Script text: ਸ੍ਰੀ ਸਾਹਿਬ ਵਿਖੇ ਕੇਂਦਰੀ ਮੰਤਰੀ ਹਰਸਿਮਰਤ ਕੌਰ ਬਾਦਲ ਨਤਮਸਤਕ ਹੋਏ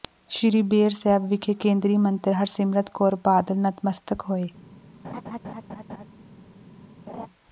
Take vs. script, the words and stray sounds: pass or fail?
fail